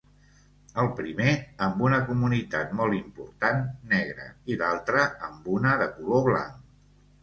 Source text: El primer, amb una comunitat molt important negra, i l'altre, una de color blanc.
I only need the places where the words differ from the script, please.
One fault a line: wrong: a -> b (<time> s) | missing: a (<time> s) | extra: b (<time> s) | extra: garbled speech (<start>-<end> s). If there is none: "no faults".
extra: amb (5.3 s)